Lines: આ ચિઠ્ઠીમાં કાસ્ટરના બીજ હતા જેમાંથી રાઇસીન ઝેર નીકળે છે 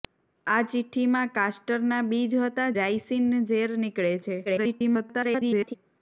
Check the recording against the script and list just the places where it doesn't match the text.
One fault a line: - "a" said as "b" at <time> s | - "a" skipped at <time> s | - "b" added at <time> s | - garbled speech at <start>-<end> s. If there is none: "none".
- "જેમાંથી" skipped at 2.6 s
- garbled speech at 4.4-5.7 s